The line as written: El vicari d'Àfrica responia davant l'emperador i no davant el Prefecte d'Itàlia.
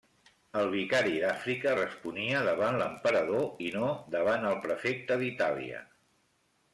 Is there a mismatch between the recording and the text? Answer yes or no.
no